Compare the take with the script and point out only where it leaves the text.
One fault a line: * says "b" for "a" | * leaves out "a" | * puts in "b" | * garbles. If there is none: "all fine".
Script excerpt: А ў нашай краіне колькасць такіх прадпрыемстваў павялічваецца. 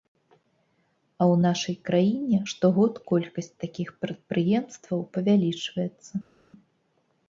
* puts in "штогод"